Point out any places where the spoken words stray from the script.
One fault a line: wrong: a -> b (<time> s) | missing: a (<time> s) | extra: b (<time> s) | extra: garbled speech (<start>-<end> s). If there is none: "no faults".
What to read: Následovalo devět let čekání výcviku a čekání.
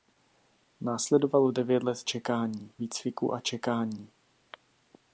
no faults